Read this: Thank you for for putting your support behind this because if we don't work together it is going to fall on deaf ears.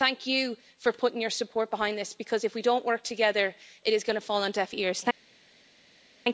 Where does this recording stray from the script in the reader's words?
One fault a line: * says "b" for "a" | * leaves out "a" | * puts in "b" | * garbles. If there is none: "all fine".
* leaves out "for"